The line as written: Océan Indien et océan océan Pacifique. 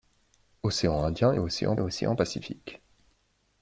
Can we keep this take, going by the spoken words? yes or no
yes